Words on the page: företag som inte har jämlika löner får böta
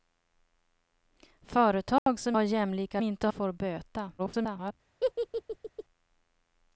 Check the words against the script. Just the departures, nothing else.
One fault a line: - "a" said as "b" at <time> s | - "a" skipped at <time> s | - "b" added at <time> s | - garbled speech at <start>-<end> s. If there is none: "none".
- "inte" skipped at 2.4 s
- "löner" said as "inte" at 3.0 s
- garbled speech at 4.2-4.7 s